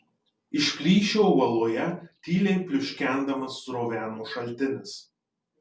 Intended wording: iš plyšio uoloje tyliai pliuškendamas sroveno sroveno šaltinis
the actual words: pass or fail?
fail